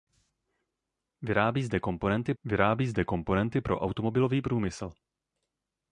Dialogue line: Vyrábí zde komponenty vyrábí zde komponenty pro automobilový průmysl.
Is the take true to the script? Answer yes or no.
yes